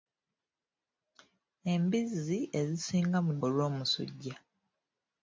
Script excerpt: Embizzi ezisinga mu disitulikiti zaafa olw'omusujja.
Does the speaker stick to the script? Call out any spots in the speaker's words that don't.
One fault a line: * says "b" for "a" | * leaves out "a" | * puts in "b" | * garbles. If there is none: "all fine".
* leaves out "disitulikiti zaafa"